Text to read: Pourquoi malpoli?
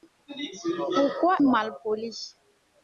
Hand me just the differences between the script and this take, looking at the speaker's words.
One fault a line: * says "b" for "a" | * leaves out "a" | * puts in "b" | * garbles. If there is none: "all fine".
all fine